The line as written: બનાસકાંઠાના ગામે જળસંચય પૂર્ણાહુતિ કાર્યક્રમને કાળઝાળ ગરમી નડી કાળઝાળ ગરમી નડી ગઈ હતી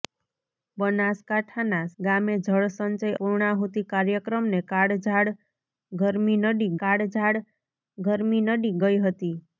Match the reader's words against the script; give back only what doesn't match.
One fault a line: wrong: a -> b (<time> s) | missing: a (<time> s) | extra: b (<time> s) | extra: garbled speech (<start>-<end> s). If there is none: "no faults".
no faults